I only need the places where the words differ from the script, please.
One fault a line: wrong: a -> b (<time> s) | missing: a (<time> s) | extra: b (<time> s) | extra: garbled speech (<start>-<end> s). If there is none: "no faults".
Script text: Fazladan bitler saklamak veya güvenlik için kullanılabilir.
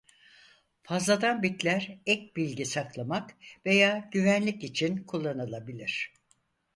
extra: ek bilgi (2.1 s)